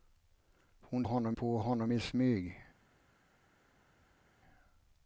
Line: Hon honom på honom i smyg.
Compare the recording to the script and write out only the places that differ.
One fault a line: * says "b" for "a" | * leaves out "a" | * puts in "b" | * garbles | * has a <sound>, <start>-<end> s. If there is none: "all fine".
all fine